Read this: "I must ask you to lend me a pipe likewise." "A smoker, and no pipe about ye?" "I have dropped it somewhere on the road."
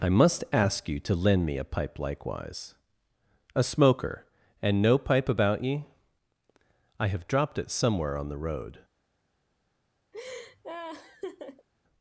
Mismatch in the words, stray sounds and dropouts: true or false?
true